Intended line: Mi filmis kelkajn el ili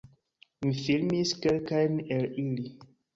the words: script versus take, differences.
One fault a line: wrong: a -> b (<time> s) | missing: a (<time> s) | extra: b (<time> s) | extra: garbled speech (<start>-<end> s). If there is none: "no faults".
no faults